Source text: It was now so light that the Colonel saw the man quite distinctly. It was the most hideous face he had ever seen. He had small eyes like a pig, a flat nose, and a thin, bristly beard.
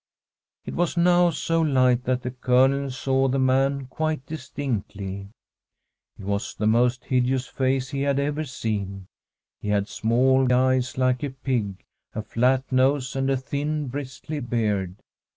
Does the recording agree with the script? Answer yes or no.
yes